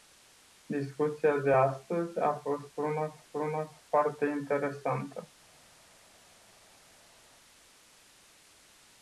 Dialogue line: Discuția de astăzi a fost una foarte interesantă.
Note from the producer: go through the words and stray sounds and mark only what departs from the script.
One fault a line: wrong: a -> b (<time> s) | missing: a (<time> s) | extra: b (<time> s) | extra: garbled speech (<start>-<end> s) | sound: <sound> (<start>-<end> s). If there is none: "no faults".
extra: una (3.3 s)